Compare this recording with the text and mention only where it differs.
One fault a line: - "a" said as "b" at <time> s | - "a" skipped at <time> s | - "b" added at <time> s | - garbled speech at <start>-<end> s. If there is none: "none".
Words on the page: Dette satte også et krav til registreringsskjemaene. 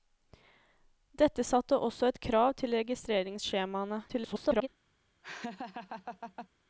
- garbled speech at 4.1-4.7 s